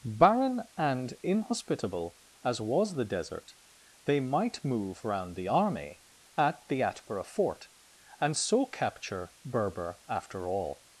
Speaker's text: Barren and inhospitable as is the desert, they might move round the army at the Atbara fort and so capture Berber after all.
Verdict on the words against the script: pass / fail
fail